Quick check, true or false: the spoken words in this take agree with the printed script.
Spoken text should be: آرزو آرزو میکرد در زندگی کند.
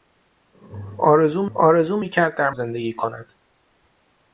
true